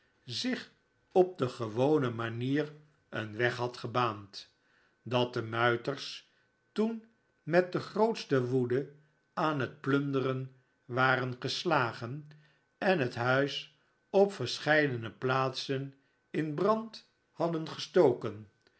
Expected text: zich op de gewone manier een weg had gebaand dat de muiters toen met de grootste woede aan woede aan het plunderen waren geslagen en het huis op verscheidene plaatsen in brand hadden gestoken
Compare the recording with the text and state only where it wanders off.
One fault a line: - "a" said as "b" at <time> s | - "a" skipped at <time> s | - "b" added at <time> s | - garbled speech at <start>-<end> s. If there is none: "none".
- "woede aan" skipped at 9.6 s